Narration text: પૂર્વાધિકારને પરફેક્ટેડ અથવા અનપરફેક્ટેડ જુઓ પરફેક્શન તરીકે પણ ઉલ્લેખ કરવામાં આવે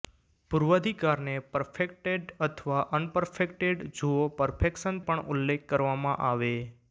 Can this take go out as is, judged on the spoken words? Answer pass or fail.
fail